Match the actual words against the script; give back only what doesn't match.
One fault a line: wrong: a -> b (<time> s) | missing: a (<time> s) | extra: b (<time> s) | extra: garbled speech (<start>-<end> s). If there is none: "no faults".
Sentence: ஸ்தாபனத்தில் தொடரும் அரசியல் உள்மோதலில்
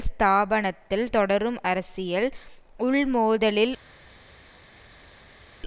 no faults